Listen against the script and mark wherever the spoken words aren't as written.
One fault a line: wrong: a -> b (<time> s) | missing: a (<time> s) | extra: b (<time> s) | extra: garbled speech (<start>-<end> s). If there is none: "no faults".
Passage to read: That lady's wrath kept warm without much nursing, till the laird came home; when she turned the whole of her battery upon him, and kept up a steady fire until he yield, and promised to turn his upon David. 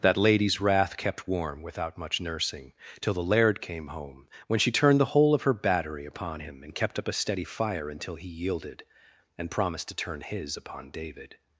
wrong: yield -> yielded (8.3 s)